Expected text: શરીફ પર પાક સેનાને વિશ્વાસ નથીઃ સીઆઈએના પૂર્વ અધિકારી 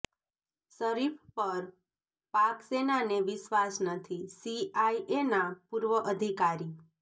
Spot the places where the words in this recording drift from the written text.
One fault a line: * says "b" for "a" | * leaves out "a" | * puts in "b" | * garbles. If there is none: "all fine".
all fine